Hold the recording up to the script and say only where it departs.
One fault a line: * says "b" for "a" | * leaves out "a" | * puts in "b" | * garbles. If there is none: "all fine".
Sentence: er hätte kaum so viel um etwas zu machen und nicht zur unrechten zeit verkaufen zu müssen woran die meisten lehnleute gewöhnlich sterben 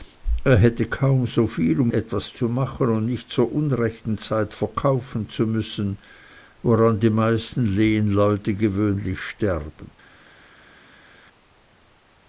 all fine